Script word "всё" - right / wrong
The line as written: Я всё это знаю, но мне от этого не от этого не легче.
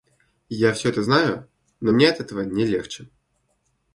right